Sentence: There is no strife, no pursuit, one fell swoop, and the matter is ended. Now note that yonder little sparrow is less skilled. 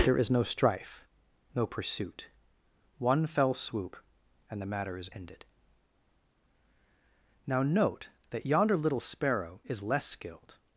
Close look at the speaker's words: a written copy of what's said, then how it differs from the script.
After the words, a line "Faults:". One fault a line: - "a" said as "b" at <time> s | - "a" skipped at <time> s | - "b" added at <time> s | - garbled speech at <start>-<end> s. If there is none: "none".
There is no strife, no pursuit, one fell swoop, and the matter is ended. Now note that yonder little sparrow is less skilled.
Faults:
none